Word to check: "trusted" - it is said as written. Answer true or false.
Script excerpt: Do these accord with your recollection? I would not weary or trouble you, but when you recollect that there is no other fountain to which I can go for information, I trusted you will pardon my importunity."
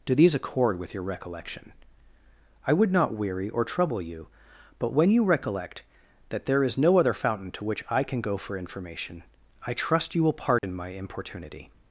false